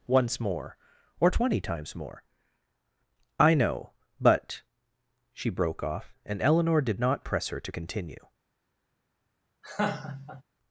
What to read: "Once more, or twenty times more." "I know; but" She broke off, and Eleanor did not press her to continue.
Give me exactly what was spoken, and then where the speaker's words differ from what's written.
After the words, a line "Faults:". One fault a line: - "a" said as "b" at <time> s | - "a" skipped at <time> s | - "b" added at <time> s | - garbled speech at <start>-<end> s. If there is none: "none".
"Once more, or twenty times more." "I know; but" She broke off, and Eleanor did not press her to continue.
Faults:
none